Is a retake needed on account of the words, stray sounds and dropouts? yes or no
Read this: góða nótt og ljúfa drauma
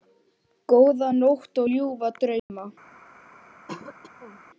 yes